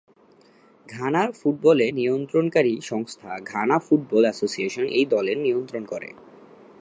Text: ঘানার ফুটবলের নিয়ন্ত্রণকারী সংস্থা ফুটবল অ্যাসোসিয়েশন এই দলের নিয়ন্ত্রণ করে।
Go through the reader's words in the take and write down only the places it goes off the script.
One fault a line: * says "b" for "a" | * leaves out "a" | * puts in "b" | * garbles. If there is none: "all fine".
* puts in "ঘানা"